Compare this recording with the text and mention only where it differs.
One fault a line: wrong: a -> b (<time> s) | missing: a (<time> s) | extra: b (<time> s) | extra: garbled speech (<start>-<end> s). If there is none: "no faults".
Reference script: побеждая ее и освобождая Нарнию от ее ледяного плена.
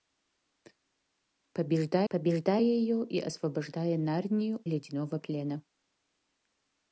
extra: побеждая (2.1 s)
missing: от ее (4.6 s)